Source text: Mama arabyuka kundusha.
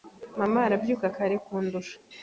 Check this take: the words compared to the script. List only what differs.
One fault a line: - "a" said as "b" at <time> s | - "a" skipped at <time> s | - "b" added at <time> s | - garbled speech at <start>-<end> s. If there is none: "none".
- "kare" added at 1.1 s